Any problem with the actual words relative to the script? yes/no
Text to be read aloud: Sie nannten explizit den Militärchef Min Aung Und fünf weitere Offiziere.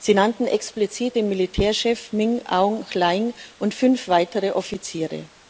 yes